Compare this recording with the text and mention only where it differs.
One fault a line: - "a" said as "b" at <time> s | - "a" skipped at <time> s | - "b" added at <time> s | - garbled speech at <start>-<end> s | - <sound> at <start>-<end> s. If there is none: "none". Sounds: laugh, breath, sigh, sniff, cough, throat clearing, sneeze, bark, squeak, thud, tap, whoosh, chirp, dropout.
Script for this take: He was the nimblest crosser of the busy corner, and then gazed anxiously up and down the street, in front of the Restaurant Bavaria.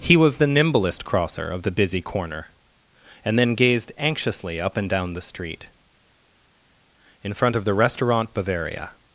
none